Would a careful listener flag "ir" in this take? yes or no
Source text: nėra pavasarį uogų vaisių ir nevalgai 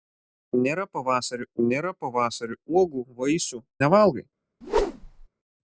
yes